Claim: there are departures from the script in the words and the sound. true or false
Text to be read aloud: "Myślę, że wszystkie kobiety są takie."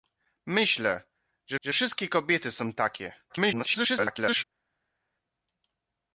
true